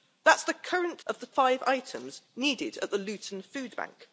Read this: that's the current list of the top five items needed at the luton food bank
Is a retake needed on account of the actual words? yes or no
yes